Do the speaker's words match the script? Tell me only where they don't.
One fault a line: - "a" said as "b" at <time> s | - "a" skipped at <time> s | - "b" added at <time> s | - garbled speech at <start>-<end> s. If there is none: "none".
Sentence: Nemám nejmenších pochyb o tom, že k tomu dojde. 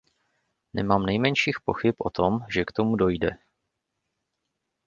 none